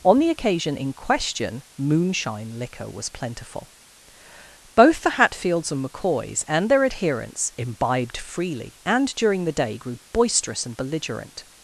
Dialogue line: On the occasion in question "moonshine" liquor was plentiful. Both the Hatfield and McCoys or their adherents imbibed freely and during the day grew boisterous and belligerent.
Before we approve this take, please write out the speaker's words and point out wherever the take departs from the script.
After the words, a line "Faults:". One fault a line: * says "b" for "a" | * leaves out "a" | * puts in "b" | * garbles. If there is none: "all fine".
On the occasion in question "moonshine" liquor was plentiful. Both the Hatfields and McCoys and their adherents imbibed freely and during the day grew boisterous and belligerent.
Faults:
* says "Hatfields" for "Hatfield"
* says "and" for "or"